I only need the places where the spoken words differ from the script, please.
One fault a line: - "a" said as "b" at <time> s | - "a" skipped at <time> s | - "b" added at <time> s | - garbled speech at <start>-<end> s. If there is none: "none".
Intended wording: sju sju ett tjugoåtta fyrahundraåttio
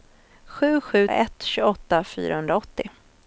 none